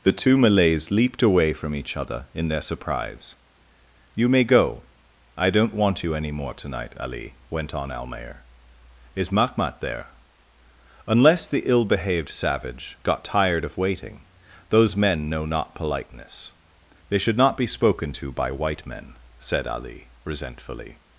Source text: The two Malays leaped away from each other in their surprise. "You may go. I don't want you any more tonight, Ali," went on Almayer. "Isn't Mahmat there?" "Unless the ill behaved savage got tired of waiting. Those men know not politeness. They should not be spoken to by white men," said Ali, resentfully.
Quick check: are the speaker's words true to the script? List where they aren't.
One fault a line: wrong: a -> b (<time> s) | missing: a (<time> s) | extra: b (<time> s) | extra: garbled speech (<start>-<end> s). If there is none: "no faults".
wrong: Isn't -> Is (9.2 s)